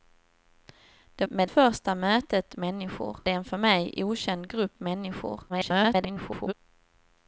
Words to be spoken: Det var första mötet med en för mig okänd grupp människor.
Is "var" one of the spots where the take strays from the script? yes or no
yes